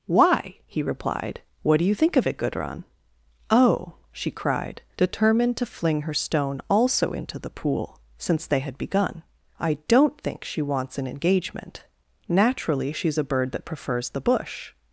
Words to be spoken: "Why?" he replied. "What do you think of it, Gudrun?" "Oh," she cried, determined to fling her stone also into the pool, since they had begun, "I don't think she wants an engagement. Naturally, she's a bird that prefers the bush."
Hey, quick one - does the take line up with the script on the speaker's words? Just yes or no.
yes